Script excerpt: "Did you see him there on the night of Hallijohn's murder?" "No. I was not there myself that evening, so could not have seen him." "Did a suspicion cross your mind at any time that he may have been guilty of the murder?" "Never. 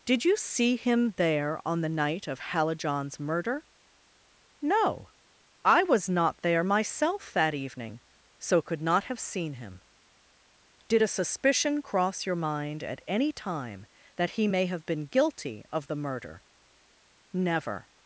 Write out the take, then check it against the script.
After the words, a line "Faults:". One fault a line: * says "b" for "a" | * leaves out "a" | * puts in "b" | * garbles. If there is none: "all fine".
"Did you see him there on the night of Hallijohn's murder?" "No. I was not there myself that evening, so could not have seen him." "Did a suspicion cross your mind at any time that he may have been guilty of the murder?" "Never.
Faults:
all fine